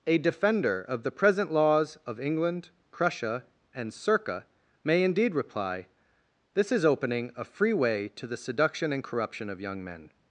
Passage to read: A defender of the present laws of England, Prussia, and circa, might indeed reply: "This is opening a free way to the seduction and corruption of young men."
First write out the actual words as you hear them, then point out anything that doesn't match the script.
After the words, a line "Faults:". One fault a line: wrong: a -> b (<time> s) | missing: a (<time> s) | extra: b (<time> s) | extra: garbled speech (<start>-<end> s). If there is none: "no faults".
A defender of the present laws of England, Prussia, and circa, may indeed reply: "This is opening a free way to the seduction and corruption of young men."
Faults:
wrong: might -> may (4.8 s)